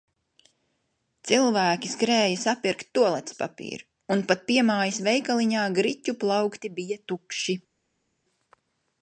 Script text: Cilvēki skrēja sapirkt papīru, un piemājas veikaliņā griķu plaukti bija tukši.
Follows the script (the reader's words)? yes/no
no